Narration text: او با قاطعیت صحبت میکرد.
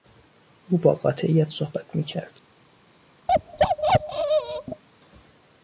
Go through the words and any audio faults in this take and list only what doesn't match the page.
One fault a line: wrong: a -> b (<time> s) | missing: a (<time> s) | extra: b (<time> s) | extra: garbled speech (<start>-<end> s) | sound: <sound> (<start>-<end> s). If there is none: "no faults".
sound: bark (3.3-4.8 s)